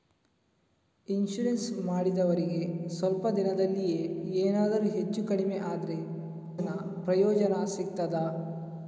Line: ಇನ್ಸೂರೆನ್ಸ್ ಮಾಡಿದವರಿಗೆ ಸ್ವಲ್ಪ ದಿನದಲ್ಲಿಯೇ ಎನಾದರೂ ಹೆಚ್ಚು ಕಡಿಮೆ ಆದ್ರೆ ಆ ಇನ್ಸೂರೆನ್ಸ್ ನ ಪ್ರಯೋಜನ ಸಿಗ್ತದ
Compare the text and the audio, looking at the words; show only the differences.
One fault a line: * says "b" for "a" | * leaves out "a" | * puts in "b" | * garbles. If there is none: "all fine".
* leaves out "ಆ ಇನ್ಸೂರೆನ್ಸ್"